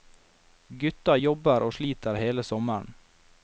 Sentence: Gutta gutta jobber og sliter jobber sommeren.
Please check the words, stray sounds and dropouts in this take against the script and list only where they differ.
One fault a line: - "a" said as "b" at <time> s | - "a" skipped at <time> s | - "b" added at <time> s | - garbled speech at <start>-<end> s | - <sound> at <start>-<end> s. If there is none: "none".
- "gutta" skipped at 1.2 s
- "jobber" said as "hele" at 2.2 s